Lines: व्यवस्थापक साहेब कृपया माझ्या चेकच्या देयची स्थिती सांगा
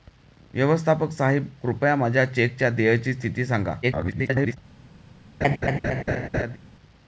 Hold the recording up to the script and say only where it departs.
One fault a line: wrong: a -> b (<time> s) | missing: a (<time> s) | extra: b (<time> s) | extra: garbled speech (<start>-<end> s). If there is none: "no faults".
extra: garbled speech (3.8-4.6 s)